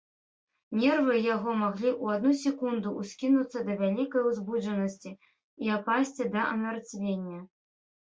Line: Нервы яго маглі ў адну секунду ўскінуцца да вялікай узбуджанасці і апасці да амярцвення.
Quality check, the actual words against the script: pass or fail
pass